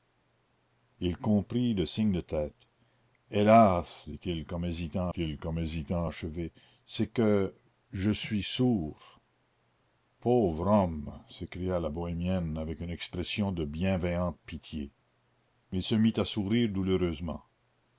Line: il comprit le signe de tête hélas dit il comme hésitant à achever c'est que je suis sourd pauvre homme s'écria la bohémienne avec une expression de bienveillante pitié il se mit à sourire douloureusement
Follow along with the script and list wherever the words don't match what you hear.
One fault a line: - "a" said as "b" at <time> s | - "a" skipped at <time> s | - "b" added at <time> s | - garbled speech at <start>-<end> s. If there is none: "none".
- "il comme hésitant" added at 5.2 s